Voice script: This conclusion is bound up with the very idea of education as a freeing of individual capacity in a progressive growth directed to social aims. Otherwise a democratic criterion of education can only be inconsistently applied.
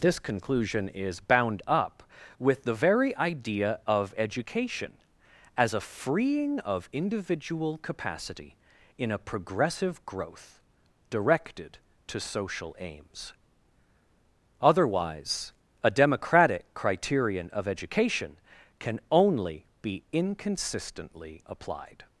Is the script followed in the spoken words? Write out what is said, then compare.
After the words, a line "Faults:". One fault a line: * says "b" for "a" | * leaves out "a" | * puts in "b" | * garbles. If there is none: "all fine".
This conclusion is bound up with the very idea of education as a freeing of individual capacity in a progressive growth directed to social aims. Otherwise a democratic criterion of education can only be inconsistently applied.
Faults:
all fine